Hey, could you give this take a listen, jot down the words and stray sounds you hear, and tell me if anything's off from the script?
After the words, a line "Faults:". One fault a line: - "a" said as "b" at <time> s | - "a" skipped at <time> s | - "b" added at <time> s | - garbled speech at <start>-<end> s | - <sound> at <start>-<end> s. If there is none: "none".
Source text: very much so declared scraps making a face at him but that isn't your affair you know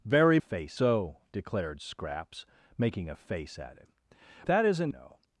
very face so declared scraps making a face at him that isn't know
Faults:
- "much" said as "face" at 0.4 s
- "but" skipped at 3.9 s
- "your affair you" skipped at 4.9 s